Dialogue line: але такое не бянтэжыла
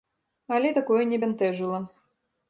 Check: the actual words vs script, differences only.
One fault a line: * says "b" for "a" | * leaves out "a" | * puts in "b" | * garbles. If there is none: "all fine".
all fine